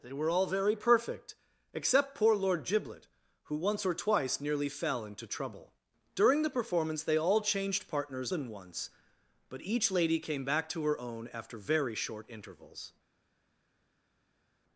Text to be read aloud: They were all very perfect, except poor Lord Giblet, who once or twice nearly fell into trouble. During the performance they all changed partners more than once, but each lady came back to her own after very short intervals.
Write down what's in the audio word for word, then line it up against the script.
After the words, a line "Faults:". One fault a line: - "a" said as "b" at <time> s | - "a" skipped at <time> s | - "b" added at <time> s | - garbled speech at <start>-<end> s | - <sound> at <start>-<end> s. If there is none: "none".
They were all very perfect, except poor Lord Giblet, who once or twice nearly fell into trouble. During the performance they all changed partners than once, but each lady came back to her own after very short intervals.
Faults:
- "more" skipped at 8.3 s